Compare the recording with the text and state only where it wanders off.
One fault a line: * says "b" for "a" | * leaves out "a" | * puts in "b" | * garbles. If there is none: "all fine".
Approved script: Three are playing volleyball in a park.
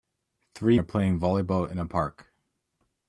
all fine